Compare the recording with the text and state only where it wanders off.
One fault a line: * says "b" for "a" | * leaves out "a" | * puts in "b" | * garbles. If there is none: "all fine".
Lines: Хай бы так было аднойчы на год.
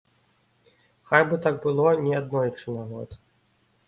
* puts in "не"